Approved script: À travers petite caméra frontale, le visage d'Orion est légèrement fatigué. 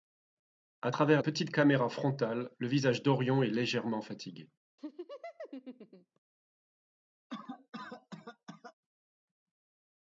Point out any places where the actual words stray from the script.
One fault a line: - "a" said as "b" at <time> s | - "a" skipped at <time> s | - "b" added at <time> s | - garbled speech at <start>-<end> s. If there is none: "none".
none